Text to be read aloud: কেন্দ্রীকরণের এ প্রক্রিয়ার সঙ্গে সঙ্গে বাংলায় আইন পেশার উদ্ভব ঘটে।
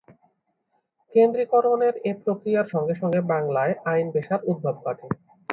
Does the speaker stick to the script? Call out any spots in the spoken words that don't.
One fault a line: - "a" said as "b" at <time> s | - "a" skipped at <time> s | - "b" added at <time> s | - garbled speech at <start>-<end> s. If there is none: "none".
none